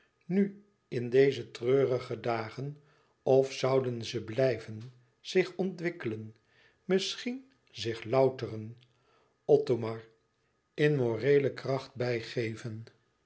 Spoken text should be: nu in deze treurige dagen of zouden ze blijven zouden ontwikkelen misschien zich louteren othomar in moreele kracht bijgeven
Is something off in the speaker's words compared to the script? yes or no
yes